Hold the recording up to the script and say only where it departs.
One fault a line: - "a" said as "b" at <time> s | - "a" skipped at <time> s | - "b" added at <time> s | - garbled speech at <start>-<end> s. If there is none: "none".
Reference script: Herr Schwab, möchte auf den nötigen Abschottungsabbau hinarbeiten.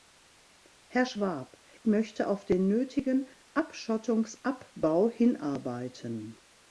none